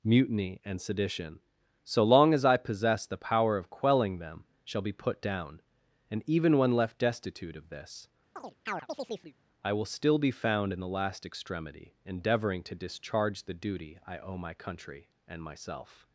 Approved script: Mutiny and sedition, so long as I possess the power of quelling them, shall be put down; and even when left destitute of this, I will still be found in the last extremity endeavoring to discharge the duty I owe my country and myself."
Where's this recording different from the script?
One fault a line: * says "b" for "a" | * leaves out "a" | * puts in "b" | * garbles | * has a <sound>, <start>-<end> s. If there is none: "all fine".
* has a chirp, 8.4-9.3 s